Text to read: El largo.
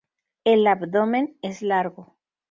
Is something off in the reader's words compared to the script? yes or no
yes